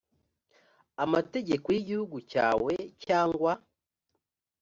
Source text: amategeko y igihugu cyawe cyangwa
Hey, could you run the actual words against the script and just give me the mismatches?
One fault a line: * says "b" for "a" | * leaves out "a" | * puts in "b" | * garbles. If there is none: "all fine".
all fine